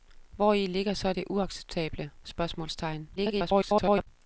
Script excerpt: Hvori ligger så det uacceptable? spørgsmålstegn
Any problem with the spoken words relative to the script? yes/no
yes